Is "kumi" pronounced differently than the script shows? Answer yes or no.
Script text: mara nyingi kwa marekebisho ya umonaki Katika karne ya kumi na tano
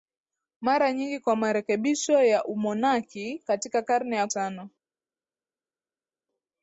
yes